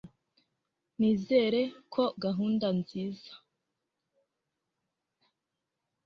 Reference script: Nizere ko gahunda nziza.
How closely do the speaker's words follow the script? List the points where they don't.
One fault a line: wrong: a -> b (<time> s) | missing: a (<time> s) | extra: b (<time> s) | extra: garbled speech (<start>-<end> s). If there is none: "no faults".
no faults